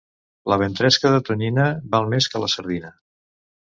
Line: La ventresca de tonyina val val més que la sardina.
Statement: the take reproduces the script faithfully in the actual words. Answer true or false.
false